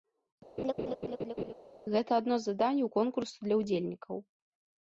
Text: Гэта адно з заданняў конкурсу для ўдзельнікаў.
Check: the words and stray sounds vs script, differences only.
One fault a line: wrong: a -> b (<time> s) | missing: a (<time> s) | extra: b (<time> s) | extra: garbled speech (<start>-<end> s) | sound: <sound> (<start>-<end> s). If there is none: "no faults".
sound: laugh (0.6-1.5 s)